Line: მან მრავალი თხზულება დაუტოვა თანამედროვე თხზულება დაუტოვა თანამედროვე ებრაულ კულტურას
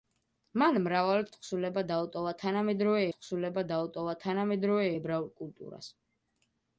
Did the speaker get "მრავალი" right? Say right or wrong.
right